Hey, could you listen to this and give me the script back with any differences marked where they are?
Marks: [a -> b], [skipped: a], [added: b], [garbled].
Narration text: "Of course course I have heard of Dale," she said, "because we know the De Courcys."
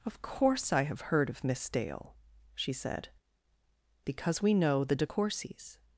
"Of course [skipped: course] I have heard of [added: Miss] Dale," she said, "because we know the De Courcys."